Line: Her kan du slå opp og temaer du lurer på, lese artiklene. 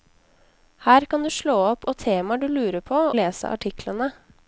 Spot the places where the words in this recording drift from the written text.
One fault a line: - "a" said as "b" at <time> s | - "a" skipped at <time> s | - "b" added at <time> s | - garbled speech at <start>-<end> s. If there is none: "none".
none